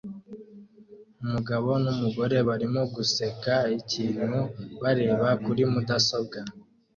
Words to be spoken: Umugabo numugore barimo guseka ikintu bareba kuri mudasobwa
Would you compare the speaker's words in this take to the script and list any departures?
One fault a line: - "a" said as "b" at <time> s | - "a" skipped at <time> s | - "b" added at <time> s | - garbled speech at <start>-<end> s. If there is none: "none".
none